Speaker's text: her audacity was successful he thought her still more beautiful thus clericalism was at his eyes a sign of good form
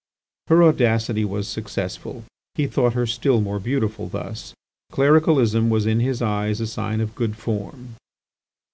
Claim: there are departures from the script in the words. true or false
true